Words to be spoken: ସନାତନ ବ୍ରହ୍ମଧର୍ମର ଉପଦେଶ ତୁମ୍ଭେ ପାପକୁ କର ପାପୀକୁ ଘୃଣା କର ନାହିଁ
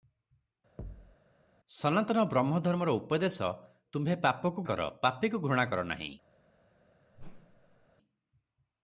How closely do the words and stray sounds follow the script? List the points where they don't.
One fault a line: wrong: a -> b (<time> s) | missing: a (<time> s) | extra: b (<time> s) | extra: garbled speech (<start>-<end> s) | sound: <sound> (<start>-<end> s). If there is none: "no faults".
sound: thud (0.8-1.2 s)
sound: whoosh (7.1-7.9 s)